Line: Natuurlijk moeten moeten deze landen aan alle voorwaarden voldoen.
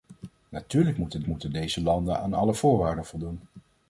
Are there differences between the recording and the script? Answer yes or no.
no